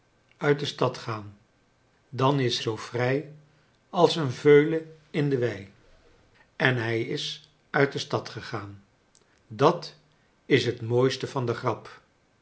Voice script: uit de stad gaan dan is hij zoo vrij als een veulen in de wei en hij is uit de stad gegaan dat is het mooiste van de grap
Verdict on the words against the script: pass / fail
fail